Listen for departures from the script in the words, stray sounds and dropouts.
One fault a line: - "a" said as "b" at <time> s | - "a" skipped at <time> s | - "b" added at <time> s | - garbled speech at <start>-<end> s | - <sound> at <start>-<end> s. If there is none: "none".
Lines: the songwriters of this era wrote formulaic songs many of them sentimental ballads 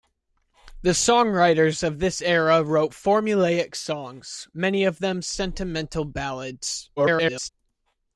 - garbled speech at 7.0-7.5 s